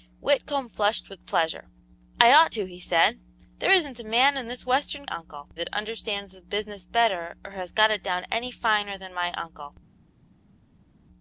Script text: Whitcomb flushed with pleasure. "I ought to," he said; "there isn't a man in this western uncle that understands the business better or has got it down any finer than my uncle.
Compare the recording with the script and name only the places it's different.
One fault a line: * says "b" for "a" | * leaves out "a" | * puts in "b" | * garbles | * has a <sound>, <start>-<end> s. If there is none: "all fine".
all fine